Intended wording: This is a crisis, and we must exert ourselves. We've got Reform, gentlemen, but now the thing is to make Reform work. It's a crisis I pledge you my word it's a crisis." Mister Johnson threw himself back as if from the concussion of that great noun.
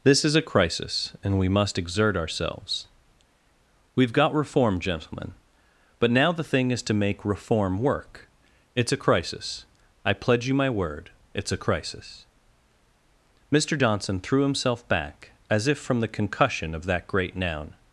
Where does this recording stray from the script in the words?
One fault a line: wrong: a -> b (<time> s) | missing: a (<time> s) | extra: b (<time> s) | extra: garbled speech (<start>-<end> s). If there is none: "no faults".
no faults